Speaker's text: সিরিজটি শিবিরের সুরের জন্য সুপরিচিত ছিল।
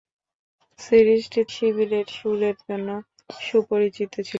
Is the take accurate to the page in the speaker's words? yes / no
yes